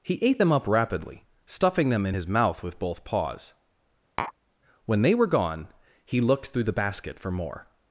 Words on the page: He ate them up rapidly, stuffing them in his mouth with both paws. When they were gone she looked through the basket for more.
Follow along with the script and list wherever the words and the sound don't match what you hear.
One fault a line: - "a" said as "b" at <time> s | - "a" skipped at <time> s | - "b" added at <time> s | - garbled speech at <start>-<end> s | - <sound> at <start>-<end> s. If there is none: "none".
- tap at 4.2-4.3 s
- "she" said as "he" at 6.0 s